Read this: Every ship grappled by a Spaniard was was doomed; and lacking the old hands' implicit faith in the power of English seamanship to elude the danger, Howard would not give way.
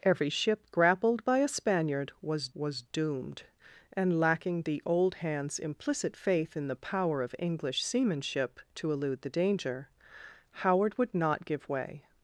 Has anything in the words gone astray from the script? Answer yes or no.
no